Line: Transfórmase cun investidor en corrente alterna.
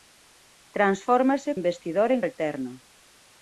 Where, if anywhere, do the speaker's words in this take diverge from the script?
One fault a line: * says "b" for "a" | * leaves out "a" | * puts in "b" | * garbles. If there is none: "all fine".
* leaves out "cun"
* leaves out "corrente"